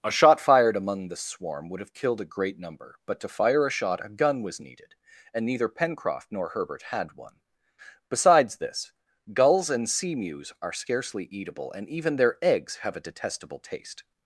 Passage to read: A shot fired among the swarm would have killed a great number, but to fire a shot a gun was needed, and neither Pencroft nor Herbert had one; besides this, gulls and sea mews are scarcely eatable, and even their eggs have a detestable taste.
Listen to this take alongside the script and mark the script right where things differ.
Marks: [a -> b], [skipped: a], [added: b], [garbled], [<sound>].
A shot fired among the swarm would have killed a great number, but to fire a shot a gun was needed, and neither Pencroft nor Herbert had one; besides this, gulls and sea mews are scarcely eatable, and even their eggs have a detestable taste.